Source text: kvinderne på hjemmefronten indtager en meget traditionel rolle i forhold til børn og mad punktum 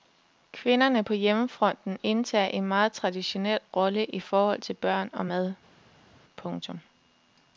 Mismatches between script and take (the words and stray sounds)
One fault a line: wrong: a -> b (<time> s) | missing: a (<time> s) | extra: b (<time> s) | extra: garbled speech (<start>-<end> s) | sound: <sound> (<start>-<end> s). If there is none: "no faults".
no faults